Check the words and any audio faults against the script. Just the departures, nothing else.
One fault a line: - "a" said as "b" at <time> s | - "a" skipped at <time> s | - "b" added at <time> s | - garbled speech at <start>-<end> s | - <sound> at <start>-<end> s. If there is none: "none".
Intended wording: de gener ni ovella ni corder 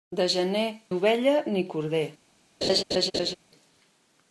- "ni" skipped at 0.7 s
- laugh at 2.6-3.4 s